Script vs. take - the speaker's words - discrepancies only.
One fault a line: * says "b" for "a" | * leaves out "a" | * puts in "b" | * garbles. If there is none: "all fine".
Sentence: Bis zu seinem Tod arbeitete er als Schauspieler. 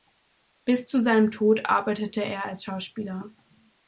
all fine